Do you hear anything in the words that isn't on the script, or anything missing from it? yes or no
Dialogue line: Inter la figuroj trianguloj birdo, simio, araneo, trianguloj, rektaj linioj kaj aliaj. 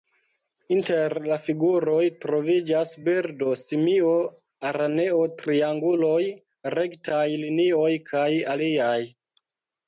yes